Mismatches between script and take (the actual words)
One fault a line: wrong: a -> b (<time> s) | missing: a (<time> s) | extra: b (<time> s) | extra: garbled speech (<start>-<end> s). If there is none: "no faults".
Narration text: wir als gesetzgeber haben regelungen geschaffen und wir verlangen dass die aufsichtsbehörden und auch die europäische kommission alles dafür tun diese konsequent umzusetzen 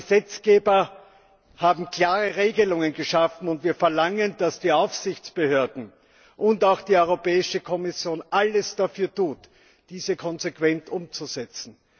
extra: klare (1.9 s)